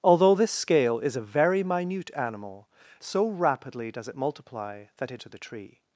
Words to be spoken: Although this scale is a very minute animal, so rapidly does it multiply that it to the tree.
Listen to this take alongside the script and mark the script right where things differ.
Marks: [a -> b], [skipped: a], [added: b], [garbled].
Although this scale is a very minute animal, so rapidly does it multiply that it to the tree.